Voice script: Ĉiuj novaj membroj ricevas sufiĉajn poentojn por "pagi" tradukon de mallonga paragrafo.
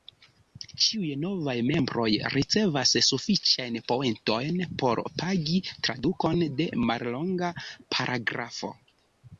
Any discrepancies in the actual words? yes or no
no